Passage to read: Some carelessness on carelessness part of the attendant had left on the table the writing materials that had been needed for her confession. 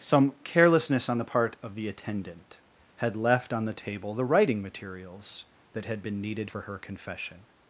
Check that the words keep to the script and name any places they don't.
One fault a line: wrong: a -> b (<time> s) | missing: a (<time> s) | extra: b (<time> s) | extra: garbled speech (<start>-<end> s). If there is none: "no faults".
wrong: carelessness -> the (1.2 s)